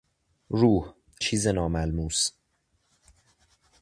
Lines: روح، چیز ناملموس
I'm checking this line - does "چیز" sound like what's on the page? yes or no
yes